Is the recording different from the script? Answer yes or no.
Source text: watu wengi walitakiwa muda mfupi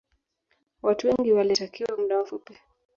no